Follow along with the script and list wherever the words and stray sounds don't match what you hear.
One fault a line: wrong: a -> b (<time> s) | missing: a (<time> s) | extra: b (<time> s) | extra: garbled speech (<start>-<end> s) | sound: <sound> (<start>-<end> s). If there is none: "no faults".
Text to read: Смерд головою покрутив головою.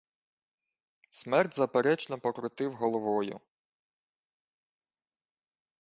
wrong: головою -> заперечно (1.5 s)